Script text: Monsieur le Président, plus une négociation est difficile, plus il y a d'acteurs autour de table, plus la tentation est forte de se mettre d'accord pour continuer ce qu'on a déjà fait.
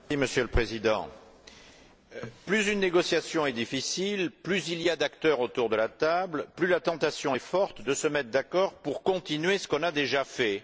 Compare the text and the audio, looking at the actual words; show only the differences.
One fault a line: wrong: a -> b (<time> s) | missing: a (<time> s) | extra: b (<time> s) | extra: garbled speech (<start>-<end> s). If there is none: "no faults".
extra: la (5.8 s)